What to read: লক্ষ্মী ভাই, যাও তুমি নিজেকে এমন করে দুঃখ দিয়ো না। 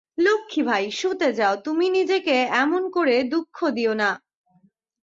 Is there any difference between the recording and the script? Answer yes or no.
yes